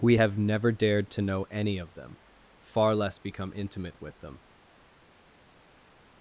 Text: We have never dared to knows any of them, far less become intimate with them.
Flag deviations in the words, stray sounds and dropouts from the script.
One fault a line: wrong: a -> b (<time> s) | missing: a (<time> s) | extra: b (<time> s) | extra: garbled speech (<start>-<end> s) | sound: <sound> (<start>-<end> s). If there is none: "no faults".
wrong: knows -> know (1.2 s)